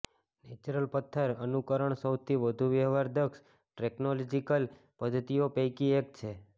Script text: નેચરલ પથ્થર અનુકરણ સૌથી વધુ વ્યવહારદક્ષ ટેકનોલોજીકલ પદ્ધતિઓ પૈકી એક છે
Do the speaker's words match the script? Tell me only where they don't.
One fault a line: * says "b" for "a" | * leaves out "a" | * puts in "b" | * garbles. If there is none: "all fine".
all fine